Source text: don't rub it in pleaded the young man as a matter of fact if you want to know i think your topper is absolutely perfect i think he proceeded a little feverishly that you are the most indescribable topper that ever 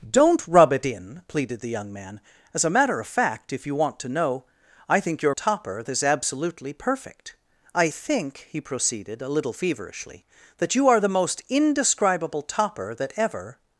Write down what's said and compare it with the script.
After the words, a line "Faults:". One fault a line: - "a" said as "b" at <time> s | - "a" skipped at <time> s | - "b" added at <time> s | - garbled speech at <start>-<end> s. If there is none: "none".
don't rub it in pleaded the young man as a matter of fact if you want to know i think your topper is absolutely perfect i think he proceeded a little feverishly that you are the most indescribable topper that ever
Faults:
none